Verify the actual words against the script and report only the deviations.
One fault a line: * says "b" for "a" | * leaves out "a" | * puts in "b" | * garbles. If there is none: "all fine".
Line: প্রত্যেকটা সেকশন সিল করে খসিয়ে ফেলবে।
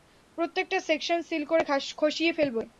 all fine